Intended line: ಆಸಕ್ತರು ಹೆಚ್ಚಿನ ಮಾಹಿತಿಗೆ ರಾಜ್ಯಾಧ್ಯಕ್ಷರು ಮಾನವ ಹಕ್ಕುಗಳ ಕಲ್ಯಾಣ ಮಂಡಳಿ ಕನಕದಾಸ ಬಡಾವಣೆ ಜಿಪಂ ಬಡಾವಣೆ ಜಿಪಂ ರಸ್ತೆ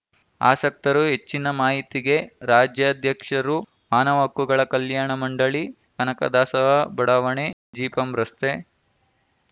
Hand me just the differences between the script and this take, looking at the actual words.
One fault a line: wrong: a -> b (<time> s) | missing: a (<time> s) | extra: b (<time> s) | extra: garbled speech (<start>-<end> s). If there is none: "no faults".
missing: ಬಡಾವಣೆ ಜಿಪಂ (8.1 s)